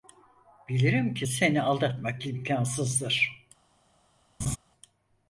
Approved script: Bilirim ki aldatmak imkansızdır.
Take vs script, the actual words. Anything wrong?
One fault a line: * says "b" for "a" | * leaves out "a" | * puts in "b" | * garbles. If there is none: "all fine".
* puts in "seni"